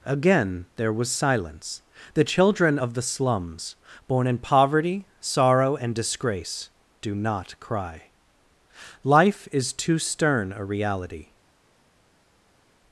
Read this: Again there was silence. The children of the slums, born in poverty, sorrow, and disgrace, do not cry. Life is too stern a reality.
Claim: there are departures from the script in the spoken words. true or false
false